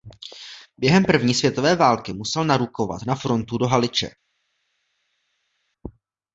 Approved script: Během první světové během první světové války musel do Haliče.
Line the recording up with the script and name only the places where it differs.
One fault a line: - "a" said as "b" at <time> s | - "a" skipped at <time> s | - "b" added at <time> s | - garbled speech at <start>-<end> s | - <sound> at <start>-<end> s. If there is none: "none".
- "během první světové války musel" said as "války musel narukovat na frontu" at 1.8 s